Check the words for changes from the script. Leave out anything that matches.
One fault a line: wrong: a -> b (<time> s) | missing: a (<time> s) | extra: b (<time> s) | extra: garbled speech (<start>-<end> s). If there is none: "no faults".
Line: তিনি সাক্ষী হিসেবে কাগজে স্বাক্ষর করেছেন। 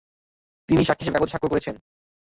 no faults